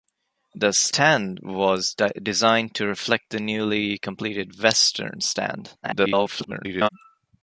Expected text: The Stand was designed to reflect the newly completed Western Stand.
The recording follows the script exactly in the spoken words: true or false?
false